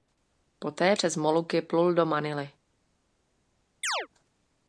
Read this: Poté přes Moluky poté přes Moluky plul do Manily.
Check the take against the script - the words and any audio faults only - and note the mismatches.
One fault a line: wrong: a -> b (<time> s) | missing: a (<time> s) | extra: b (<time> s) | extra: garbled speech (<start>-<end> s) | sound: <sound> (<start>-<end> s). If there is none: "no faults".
missing: poté přes Moluky (1.6 s)
sound: chirp (3.8-4.1 s)